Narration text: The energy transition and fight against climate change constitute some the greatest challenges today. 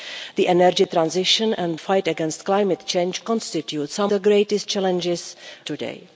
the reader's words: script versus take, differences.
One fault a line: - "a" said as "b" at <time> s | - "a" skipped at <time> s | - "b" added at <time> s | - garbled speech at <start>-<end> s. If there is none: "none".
none